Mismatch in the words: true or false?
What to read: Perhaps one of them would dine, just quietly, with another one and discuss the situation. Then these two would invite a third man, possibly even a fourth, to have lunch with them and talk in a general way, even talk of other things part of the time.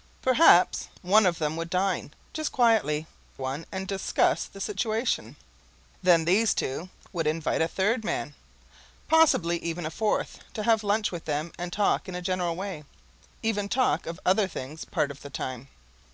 true